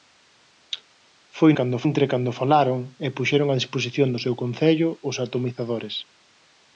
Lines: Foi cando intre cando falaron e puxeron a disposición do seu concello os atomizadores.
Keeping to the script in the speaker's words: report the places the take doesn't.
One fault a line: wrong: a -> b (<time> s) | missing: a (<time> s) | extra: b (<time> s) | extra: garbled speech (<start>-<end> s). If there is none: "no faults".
no faults